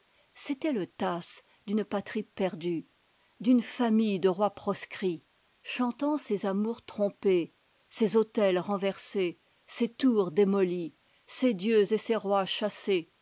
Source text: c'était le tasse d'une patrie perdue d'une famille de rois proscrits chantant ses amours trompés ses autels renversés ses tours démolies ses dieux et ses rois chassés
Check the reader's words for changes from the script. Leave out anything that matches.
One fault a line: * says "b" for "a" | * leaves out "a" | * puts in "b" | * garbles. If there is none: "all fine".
all fine